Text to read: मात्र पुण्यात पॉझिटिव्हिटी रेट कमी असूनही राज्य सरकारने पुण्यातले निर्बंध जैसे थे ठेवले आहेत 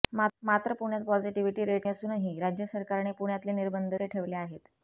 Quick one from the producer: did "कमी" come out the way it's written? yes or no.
no